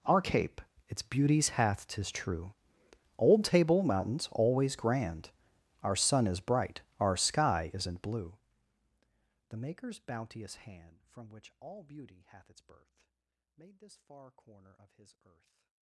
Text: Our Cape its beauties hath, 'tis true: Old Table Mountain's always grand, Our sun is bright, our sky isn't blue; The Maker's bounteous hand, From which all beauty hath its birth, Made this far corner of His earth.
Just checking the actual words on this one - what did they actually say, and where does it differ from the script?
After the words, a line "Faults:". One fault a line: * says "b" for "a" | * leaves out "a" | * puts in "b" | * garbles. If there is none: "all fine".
Our Cape its beauties hath, 'tis true: Old Table Mountain's always grand, Our sun is bright, our sky isn't blue; The Maker's bounteous hand, From which all beauty hath its birth, Made this far corner of His earth.
Faults:
all fine